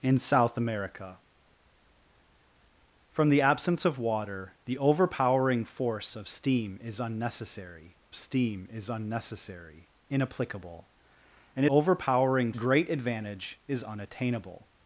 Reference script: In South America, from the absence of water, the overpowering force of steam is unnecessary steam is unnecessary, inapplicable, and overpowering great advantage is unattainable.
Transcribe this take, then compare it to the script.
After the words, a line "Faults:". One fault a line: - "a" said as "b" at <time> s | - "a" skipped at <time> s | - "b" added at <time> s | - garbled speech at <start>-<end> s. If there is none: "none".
In South America, from the absence of water, the overpowering force of steam is unnecessary steam is unnecessary, inapplicable, and overpowering great advantage is unattainable.
Faults:
none